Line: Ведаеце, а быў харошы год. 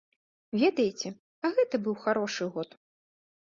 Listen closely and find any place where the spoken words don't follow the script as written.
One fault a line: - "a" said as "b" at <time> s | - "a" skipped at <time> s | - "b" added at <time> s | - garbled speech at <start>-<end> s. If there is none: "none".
- "гэта" added at 1.6 s